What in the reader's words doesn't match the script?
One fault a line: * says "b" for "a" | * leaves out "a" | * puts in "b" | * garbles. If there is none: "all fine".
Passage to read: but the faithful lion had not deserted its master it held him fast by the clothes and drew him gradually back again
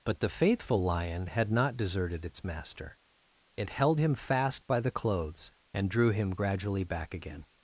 all fine